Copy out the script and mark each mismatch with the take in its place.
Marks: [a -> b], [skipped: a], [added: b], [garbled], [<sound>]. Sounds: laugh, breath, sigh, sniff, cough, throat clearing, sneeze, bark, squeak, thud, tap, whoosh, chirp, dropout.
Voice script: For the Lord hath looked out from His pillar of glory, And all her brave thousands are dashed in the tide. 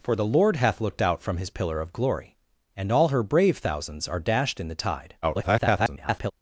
For the Lord hath looked out from His pillar of glory, And all her brave thousands are dashed in the tide. [garbled]